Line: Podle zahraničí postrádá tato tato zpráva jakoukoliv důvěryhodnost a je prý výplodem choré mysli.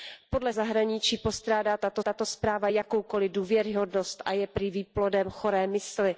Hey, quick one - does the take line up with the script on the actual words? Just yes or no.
yes